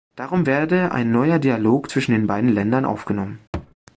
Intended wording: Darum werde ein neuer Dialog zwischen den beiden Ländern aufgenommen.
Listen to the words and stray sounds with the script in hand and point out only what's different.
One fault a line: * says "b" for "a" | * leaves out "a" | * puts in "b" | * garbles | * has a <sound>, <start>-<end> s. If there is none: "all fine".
* has a thud, 3.5-3.7 s